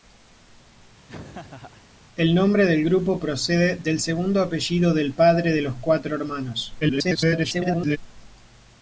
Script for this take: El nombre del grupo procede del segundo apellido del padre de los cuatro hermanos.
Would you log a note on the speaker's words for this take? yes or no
yes